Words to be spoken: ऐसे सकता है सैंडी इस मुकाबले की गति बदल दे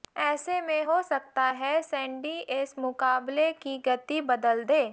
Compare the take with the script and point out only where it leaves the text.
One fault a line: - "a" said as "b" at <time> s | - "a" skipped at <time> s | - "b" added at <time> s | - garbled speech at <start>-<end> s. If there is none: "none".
- "में हो" added at 0.6 s